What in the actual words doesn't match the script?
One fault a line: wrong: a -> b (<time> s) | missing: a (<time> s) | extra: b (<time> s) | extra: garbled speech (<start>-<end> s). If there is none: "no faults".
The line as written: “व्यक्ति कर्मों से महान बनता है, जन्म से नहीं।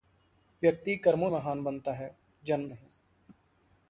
missing: से (1.3 s)
missing: से (2.7 s)